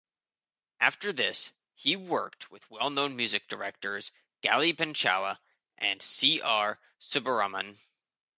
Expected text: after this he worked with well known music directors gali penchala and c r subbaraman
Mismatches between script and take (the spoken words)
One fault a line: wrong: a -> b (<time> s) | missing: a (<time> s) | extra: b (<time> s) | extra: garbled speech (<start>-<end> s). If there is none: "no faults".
no faults